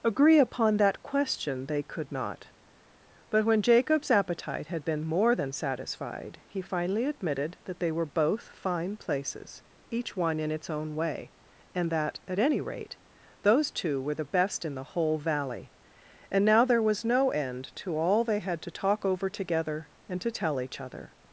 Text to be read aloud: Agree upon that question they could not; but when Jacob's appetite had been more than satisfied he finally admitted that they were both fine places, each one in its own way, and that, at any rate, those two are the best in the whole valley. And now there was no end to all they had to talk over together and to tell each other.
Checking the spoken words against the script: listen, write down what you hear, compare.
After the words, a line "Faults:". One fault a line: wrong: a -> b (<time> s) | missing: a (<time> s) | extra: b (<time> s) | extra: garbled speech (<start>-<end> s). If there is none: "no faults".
Agree upon that question they could not; but when Jacob's appetite had been more than satisfied he finally admitted that they were both fine places, each one in its own way, and that, at any rate, those two were the best in the whole valley. And now there was no end to all they had to talk over together and to tell each other.
Faults:
wrong: are -> were (14.0 s)